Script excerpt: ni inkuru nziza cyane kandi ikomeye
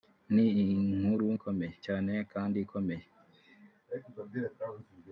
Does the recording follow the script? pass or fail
fail